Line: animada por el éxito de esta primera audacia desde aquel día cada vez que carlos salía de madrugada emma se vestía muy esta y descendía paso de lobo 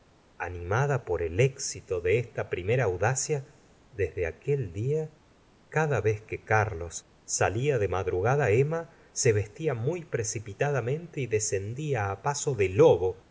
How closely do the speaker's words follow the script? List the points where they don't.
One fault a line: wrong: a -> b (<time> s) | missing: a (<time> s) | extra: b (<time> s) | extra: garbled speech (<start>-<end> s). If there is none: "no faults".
wrong: esta -> precipitadamente (10.0 s)